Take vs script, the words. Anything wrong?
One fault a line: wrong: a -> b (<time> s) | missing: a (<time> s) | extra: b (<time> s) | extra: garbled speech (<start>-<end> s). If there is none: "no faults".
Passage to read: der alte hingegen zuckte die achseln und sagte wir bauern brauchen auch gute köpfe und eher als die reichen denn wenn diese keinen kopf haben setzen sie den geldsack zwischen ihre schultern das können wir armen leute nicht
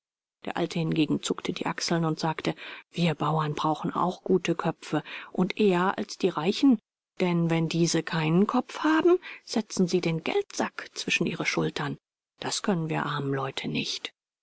no faults